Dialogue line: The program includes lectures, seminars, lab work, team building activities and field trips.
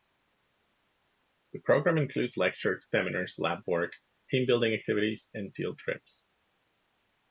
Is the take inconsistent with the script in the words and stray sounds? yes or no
no